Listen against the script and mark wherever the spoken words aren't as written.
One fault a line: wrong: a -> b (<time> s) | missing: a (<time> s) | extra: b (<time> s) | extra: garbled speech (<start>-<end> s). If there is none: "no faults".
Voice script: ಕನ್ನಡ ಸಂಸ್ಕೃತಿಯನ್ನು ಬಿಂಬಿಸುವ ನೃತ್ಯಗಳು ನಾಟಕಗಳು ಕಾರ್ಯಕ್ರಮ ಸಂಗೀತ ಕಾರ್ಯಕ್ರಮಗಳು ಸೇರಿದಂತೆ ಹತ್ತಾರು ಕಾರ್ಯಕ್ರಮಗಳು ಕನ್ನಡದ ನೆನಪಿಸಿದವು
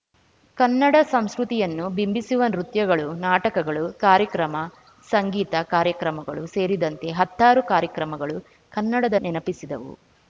no faults